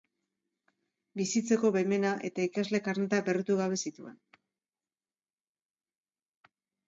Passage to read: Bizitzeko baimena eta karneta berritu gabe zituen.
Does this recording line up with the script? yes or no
no